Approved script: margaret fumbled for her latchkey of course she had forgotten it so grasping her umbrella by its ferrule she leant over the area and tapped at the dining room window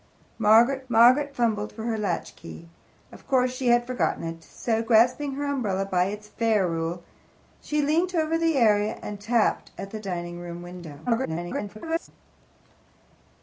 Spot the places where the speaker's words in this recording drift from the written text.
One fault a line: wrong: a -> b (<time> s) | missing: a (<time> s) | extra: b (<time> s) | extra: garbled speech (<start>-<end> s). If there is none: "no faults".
extra: margaret (0.9 s)
extra: garbled speech (11.1-12.1 s)